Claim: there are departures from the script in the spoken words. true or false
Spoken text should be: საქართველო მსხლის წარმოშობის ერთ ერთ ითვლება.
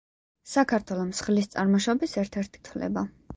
false